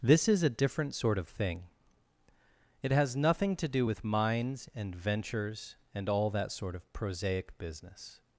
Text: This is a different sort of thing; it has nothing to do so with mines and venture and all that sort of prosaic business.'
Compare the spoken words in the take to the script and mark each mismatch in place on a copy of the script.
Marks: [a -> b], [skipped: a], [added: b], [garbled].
This is a different sort of thing; it has nothing to do [skipped: so] with mines and [venture -> ventures] and all that sort of prosaic business.'